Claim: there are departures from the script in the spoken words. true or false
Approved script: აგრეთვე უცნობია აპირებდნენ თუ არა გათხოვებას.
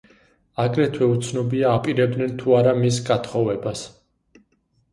true